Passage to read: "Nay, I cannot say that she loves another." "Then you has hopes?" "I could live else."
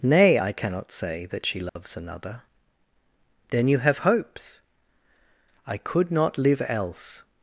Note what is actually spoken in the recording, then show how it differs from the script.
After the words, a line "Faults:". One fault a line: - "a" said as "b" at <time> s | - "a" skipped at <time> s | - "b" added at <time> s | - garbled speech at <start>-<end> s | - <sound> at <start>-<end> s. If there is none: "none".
"Nay, I cannot say that she loves another." "Then you have hopes?" "I could not live else."
Faults:
- dropout at 1.7-1.8 s
- "has" said as "have" at 3.8 s
- "not" added at 6.1 s